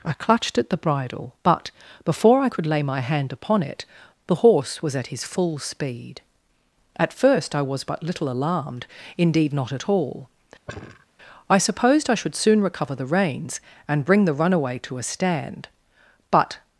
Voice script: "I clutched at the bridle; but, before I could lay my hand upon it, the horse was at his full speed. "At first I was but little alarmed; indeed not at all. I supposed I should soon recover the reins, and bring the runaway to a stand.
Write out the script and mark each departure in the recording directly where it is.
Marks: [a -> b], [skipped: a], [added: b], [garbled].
"I clutched at the bridle; but, before I could lay my hand upon it, the horse was at his full speed. "At first I was but little alarmed; indeed not at all. I supposed I should soon recover the reins, and bring the runaway to a stand. [added: But]